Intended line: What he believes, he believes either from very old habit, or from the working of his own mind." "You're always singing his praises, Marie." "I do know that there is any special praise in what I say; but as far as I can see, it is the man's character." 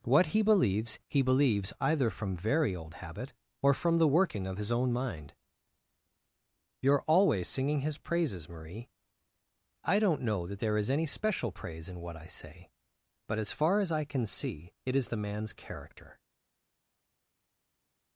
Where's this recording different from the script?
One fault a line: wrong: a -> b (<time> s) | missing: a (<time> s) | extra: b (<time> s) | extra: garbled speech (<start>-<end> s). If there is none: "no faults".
wrong: do -> don't (10.0 s)